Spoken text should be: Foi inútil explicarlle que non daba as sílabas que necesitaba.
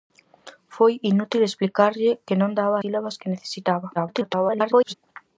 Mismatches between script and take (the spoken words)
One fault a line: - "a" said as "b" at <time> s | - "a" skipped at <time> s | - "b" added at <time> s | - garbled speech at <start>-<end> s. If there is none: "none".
- "as" skipped at 2.8 s
- garbled speech at 4.0-4.9 s